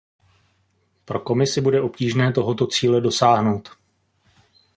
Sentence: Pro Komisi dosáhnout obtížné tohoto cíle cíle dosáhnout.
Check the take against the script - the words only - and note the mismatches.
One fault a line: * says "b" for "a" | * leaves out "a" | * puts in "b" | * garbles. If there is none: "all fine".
* says "bude" for "dosáhnout"
* leaves out "cíle"